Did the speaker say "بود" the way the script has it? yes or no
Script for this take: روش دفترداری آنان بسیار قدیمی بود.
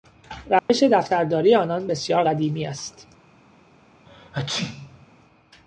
no